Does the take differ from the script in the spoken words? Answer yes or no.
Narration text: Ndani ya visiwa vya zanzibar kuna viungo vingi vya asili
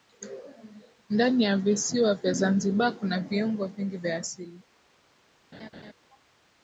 no